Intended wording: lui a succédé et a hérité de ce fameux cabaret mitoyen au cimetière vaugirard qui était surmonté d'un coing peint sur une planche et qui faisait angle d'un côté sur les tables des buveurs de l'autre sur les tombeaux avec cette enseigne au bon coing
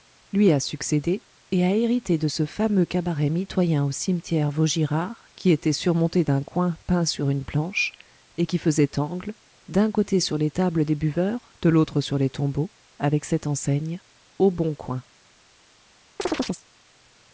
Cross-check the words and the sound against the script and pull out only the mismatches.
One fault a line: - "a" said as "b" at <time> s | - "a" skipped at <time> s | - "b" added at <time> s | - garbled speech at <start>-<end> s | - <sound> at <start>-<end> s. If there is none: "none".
- chirp at 16.2-16.6 s